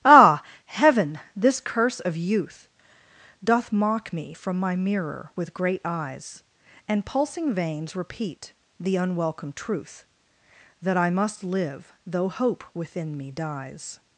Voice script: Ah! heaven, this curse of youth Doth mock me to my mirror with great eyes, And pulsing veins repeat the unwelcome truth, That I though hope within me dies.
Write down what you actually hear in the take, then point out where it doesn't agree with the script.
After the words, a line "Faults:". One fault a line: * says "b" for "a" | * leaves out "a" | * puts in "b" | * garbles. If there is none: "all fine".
Ah! heaven, this curse of youth Doth mock me from my mirror with great eyes, And pulsing veins repeat the unwelcome truth, That I must live, though hope within me dies.
Faults:
* says "from" for "to"
* puts in "must live"